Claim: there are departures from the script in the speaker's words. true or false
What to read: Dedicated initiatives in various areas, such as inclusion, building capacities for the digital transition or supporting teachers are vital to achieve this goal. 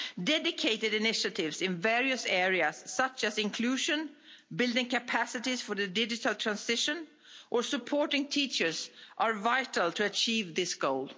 false